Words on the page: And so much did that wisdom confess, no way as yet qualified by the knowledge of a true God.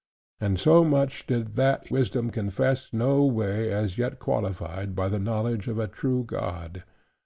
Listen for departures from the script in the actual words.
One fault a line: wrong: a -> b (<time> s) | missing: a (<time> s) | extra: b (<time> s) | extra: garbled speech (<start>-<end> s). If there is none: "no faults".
no faults